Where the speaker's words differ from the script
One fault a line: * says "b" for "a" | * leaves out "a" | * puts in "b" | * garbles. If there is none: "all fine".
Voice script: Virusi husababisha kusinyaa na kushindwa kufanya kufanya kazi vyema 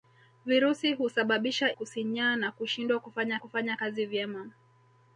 all fine